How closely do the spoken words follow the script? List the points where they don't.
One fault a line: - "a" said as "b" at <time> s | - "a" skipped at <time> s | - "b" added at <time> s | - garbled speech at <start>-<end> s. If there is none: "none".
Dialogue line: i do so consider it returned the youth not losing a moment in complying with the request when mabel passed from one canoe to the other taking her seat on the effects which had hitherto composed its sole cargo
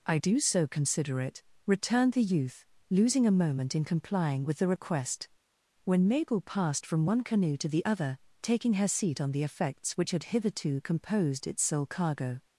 - "not" skipped at 2.6 s